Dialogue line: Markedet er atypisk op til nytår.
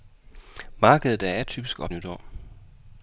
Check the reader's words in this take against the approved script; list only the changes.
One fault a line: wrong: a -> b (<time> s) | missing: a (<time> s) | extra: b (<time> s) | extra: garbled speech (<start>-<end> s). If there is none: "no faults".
missing: til (1.9 s)